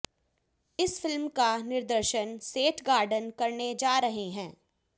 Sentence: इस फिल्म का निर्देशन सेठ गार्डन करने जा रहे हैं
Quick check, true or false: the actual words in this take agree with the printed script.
true